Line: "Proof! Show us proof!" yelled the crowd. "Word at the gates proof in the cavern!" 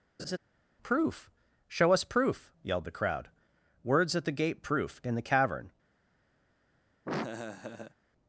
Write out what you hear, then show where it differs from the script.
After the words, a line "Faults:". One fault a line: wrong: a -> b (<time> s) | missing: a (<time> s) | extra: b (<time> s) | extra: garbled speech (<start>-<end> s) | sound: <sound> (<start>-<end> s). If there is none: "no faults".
"Proof! Show us proof!" yelled the crowd. "Words at the gate proof in the cavern!"
Faults:
sound: laugh (0.2-0.4 s)
wrong: Word -> Words (3.8 s)
wrong: gates -> gate (4.3 s)
sound: laugh (7.0-7.9 s)